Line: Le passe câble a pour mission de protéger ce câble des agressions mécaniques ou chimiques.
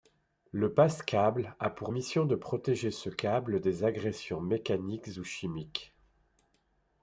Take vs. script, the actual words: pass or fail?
pass